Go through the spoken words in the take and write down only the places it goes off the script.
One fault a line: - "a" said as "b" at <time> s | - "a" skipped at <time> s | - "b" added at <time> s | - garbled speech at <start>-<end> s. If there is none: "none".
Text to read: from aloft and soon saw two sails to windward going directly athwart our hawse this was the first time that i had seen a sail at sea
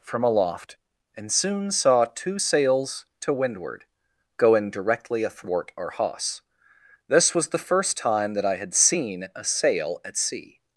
none